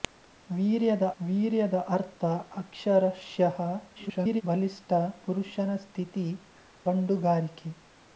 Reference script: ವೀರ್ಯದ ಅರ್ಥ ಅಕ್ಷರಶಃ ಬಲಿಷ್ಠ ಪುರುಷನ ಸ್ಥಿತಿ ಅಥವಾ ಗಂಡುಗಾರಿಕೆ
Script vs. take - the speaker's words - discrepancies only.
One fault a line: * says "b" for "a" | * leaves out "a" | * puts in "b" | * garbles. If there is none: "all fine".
* puts in "ವೀರ್ಯದ"
* garbles
* leaves out "ಅಥವಾ"